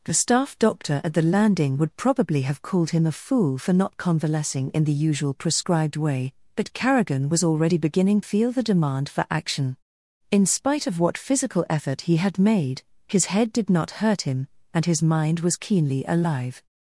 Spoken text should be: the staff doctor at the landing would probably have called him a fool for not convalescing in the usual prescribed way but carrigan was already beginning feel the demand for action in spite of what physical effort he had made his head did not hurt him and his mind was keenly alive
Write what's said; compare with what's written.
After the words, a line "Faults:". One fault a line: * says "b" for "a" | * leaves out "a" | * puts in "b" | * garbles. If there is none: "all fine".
the staff doctor at the landing would probably have called him a fool for not convalescing in the usual prescribed way but carrigan was already beginning feel the demand for action in spite of what physical effort he had made his head did not hurt him and his mind was keenly alive
Faults:
all fine